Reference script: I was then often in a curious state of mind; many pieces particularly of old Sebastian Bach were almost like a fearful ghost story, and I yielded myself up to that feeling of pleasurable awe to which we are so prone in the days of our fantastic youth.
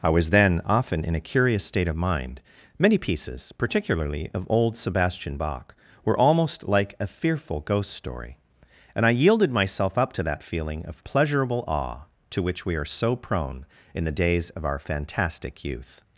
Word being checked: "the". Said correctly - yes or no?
yes